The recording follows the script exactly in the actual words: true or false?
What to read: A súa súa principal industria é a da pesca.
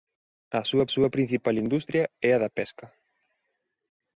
true